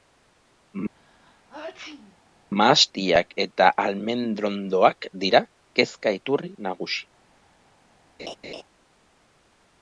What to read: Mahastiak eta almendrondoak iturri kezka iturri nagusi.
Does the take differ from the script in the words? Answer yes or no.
yes